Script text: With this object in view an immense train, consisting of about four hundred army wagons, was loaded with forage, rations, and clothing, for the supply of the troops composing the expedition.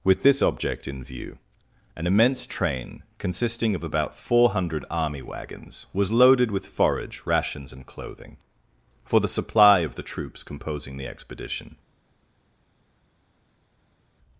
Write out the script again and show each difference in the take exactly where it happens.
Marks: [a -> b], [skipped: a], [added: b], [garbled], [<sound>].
With this object in view an immense train, consisting of about four hundred army wagons, was loaded with forage, rations, and clothing, for the supply of the troops composing the expedition.